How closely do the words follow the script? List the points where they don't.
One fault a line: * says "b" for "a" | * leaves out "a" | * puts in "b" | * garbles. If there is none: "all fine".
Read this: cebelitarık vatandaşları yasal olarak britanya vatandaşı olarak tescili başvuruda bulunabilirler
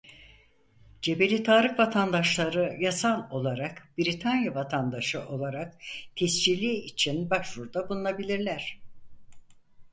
* puts in "için"